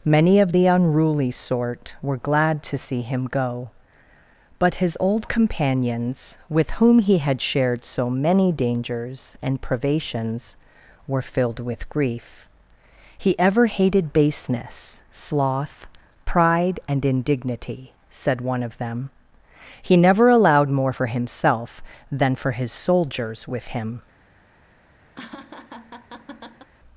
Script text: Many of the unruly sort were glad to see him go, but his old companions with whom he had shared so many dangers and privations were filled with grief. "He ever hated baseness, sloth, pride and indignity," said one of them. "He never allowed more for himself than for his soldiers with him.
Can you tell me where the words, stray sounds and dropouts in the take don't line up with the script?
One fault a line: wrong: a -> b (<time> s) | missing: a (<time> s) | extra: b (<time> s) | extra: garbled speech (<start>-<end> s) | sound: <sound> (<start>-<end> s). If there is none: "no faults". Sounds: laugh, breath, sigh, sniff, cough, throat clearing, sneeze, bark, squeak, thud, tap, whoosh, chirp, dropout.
sound: laugh (25.2-26.7 s)